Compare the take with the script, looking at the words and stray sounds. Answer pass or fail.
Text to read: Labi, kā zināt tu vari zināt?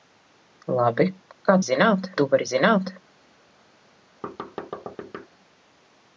fail